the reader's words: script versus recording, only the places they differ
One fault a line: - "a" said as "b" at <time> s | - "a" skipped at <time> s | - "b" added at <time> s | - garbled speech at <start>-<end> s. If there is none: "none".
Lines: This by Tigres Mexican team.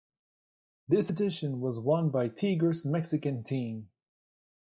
- "edition was won" added at 1.1 s